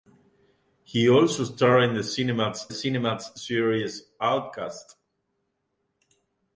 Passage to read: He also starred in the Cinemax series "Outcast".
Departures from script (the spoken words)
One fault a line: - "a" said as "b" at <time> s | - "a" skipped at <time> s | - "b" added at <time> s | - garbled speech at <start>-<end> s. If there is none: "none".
- "Cinemax" added at 2.7 s